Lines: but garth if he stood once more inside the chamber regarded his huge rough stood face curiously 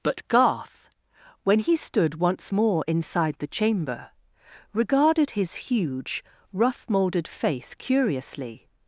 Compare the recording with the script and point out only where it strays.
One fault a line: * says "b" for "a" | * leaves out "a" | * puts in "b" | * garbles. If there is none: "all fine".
* says "when" for "if"
* says "moulded" for "stood"